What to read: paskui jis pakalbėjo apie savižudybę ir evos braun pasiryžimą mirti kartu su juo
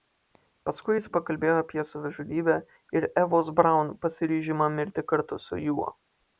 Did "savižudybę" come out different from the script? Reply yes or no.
no